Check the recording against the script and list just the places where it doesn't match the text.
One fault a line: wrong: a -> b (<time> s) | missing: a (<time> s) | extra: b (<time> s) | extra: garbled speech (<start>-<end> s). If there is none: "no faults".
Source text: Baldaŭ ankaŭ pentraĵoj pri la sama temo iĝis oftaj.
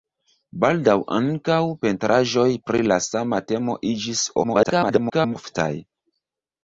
extra: garbled speech (4.4-5.4 s)